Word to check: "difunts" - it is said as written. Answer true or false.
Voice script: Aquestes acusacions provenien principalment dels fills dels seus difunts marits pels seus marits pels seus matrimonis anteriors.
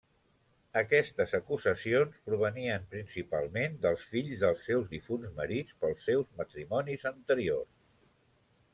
true